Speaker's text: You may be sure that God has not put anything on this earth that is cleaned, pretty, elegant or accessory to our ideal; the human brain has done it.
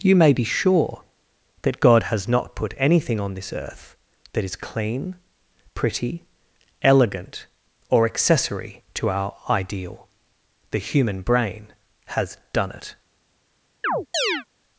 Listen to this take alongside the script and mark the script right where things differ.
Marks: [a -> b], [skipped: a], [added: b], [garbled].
You may be sure that God has not put anything on this earth that is [cleaned, -> clean] pretty, elegant or accessory to our ideal; the human brain has done it.